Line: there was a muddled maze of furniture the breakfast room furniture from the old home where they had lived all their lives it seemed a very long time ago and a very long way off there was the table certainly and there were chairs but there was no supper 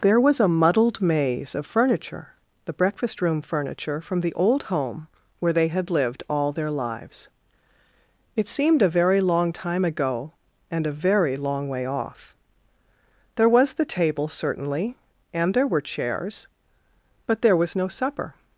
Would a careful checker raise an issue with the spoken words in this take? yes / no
no